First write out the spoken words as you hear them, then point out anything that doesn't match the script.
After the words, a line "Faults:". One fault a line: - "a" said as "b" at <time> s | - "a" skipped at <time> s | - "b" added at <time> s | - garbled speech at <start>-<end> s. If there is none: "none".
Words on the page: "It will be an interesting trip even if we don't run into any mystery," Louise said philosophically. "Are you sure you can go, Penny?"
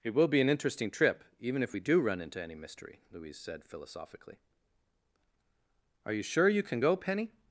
"It will be an interesting trip even if we do run into any mystery," Louise said philosophically. "Are you sure you can go, Penny?"
Faults:
- "don't" said as "do" at 1.8 s